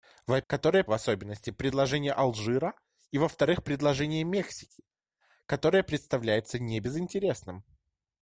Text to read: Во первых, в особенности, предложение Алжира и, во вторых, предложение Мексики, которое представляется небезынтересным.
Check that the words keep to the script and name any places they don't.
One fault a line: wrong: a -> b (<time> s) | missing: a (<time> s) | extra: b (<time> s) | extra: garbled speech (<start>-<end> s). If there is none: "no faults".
wrong: первых -> которое (0.5 s)